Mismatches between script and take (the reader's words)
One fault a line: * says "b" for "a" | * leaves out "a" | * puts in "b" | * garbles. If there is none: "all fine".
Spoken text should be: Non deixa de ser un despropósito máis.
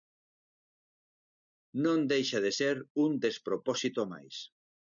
all fine